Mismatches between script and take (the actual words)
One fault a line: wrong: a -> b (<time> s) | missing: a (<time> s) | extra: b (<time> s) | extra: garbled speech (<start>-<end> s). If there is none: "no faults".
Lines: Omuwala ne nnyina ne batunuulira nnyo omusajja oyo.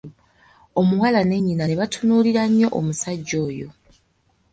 no faults